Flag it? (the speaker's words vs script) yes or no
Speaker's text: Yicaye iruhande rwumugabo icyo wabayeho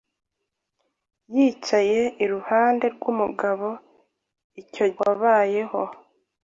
no